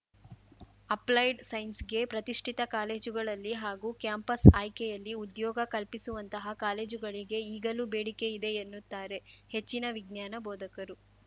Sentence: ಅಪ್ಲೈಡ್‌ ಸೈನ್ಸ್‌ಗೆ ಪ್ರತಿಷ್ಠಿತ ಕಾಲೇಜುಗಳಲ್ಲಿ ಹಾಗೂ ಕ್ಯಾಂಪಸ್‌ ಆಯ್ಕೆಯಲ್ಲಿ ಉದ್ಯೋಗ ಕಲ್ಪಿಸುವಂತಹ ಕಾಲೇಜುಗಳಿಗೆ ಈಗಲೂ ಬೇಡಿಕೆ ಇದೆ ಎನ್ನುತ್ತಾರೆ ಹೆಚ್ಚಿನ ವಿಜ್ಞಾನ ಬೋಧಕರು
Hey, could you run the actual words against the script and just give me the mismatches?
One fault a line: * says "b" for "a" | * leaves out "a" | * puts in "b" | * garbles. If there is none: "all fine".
all fine